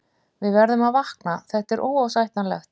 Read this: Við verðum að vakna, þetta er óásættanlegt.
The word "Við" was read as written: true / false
true